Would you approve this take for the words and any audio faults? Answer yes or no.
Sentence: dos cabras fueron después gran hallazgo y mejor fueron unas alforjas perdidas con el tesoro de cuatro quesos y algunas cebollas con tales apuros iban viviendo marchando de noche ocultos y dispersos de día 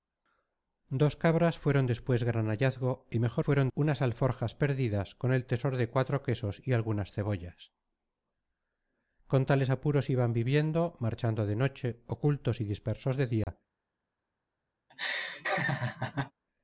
no